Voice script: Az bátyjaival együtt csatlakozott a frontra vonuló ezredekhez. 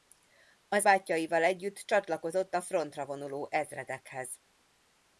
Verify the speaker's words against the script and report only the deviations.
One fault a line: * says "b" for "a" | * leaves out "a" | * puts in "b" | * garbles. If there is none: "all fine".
all fine